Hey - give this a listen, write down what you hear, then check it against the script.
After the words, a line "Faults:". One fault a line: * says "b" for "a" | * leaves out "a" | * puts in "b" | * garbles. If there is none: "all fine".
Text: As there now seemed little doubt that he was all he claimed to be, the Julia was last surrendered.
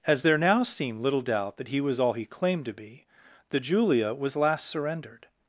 As there now seemed little doubt that he was all he claimed to be, the Julia was last surrendered.
Faults:
all fine